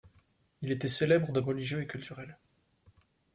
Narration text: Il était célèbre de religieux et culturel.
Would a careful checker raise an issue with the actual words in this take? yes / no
no